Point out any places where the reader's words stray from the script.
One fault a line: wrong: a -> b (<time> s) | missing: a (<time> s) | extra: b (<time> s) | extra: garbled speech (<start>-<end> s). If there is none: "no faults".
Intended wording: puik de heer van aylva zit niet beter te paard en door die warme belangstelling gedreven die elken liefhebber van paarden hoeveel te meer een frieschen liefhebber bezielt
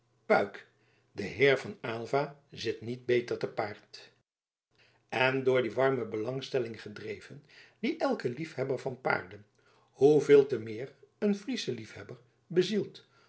no faults